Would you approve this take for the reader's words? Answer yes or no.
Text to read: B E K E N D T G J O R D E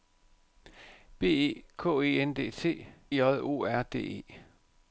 no